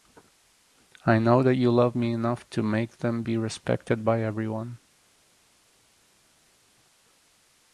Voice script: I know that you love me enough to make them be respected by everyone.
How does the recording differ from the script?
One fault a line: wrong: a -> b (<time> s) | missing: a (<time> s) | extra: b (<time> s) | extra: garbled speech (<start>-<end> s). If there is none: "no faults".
no faults